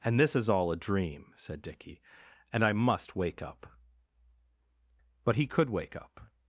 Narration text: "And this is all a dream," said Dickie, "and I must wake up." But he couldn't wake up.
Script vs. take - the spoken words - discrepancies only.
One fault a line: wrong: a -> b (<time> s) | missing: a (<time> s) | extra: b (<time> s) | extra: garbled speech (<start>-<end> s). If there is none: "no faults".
wrong: couldn't -> could (5.5 s)